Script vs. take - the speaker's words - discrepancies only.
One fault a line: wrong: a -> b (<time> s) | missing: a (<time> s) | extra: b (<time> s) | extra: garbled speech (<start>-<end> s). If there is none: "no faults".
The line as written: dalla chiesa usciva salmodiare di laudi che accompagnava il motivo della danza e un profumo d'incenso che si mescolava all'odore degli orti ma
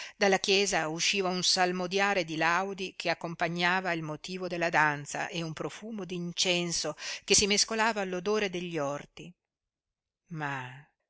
extra: un (1.3 s)